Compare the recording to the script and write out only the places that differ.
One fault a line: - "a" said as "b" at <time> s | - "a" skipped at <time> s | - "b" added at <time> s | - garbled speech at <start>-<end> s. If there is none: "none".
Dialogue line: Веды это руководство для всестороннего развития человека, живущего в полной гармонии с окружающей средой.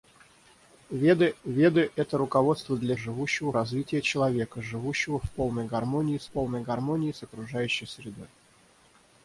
- "веды" added at 1.4 s
- "всестороннего" said as "живущего" at 2.9 s
- "полной гармонии с" added at 6.3 s